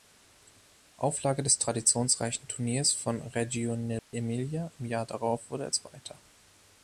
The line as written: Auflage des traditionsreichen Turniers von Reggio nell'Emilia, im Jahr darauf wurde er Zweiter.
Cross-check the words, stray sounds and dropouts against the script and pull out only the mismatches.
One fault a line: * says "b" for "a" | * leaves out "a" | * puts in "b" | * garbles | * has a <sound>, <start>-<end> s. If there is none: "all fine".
* has a dropout, 4.0-4.1 s